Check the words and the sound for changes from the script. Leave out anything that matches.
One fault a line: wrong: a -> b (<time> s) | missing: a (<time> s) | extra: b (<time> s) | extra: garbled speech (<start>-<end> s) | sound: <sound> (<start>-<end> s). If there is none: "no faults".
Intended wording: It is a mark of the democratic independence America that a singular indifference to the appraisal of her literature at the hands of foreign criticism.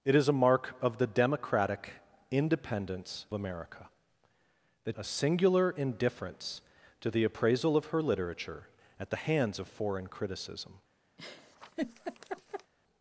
sound: laugh (11.2-12.7 s)